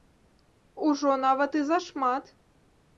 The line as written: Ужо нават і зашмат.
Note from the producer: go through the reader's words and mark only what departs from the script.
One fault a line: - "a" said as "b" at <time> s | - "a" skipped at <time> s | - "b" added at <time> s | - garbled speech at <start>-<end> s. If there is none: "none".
none